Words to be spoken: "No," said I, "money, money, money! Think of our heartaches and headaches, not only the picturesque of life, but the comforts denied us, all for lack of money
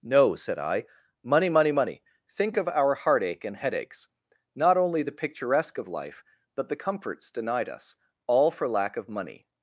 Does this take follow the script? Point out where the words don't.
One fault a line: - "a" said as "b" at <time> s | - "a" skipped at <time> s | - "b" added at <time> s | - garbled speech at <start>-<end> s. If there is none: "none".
- "heartaches" said as "heartache" at 3.0 s